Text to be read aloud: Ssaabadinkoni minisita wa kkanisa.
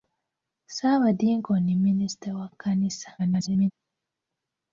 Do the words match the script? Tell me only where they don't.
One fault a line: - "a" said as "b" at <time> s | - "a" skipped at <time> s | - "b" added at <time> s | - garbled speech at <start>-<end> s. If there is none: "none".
- garbled speech at 3.2-3.7 s